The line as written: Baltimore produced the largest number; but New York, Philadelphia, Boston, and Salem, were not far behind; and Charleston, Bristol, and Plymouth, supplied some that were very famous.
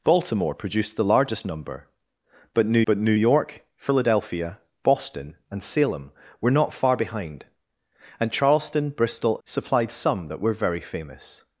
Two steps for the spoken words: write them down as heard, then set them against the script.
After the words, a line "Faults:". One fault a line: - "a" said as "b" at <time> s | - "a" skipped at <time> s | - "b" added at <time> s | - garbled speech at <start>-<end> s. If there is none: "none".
Baltimore produced the largest number; but New but New York, Philadelphia, Boston, and Salem, were not far behind; and Charleston, Bristol, supplied some that were very famous.
Faults:
- "but New" added at 2.9 s
- "and Plymouth" skipped at 9.4 s